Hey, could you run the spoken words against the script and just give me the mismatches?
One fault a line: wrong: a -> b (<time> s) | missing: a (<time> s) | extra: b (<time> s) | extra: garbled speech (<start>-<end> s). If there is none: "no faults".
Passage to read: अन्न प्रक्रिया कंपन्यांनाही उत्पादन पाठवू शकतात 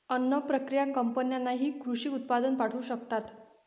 extra: कृषी (1.8 s)